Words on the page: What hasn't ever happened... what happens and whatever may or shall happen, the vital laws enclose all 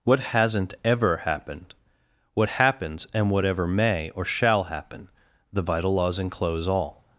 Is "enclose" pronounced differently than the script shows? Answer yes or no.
no